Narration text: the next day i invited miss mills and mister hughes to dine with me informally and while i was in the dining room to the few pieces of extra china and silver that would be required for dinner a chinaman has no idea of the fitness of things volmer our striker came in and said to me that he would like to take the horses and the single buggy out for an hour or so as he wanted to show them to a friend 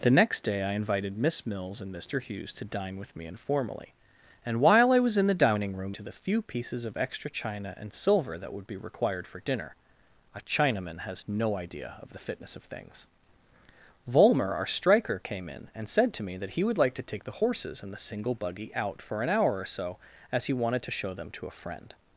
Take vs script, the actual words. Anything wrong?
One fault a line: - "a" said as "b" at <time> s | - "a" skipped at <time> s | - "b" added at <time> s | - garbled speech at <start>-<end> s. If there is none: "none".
none